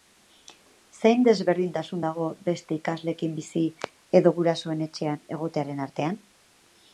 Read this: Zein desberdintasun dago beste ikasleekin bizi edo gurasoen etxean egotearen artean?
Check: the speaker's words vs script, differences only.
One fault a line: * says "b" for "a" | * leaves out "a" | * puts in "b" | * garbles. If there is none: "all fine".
all fine